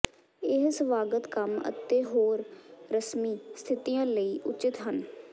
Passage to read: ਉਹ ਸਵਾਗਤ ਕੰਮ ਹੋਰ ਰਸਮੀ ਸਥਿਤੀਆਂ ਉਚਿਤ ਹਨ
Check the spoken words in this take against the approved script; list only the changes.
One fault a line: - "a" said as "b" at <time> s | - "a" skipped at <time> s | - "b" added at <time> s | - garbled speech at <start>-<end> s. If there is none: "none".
- "ਉਹ" said as "ਇਹ" at 0.4 s
- "ਅਤੇ" added at 1.7 s
- "ਲਈ" added at 4.1 s